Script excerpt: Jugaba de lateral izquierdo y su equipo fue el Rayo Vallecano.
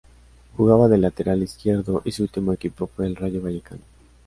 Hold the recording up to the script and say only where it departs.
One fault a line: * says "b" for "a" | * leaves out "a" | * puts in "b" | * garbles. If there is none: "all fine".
* puts in "último"